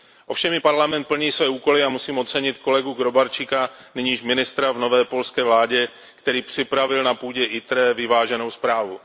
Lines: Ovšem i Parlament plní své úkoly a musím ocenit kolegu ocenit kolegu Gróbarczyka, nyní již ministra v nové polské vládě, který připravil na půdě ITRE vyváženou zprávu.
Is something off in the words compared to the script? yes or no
yes